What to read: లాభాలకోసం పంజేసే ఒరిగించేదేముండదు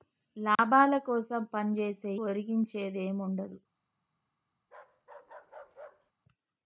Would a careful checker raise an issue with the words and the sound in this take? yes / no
yes